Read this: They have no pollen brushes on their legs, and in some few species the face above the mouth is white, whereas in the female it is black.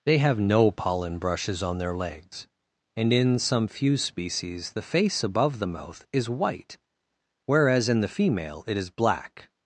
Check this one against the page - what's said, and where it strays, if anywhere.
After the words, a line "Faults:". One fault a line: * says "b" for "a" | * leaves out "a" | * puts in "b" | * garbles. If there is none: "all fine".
They have no pollen brushes on their legs, and in some few species the face above the mouth is white, whereas in the female it is black.
Faults:
all fine